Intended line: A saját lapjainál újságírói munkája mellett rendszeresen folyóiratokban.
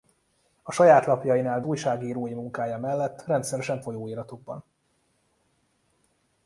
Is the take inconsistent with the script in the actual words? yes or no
no